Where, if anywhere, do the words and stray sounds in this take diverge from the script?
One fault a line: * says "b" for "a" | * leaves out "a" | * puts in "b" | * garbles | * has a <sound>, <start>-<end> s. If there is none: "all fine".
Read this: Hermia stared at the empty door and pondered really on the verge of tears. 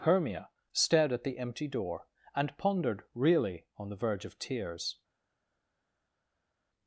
all fine